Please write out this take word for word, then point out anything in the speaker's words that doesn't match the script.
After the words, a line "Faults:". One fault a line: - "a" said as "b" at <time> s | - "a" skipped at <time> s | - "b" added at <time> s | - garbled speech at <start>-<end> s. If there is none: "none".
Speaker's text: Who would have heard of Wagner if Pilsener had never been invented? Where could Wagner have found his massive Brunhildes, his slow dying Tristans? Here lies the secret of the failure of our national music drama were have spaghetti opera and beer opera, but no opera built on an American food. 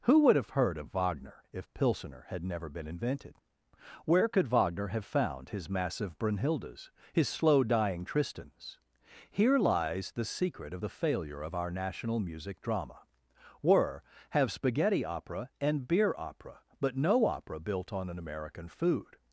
Who would have heard of Wagner if Pilsener had never been invented? Where could Wagner have found his massive Brunhildes, his slow dying Tristans? Here lies the secret of the failure of our national music drama were have spaghetti opera and beer opera, but no opera built on an American food.
Faults:
none